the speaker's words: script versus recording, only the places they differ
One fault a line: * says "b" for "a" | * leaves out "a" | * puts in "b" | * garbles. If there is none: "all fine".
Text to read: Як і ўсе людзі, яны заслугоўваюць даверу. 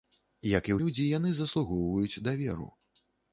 * leaves out "ўсе"